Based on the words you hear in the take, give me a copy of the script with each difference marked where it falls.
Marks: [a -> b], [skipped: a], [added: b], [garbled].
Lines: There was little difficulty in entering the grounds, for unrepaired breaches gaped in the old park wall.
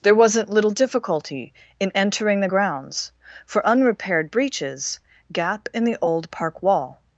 There [was -> wasn't] little difficulty in entering the grounds, for unrepaired breaches [gaped -> gap] in the old park wall.